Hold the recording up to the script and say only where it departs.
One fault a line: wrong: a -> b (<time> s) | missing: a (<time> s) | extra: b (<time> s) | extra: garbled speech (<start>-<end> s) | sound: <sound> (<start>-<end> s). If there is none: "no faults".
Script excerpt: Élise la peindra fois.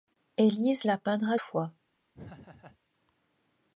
sound: laugh (2.1-2.8 s)